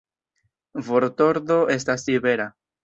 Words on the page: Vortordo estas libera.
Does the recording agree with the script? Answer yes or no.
yes